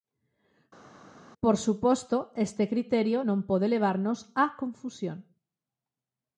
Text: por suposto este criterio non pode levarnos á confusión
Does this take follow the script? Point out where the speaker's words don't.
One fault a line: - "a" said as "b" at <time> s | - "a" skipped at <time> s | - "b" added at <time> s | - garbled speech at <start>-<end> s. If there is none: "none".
none